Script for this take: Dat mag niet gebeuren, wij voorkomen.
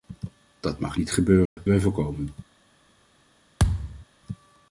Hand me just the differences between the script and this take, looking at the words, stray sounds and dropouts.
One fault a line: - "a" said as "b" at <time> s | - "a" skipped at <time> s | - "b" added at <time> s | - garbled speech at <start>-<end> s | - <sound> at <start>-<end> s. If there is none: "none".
- dropout at 1.5-1.6 s
- thud at 3.6-4.1 s